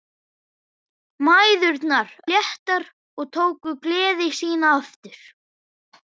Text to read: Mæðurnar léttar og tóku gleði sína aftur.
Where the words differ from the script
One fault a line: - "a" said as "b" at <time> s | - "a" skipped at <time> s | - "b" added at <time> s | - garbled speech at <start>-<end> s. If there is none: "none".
none